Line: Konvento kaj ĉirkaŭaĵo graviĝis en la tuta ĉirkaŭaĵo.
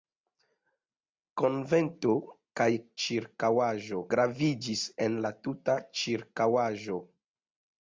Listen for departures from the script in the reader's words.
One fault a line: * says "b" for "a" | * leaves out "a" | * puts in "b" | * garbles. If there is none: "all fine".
all fine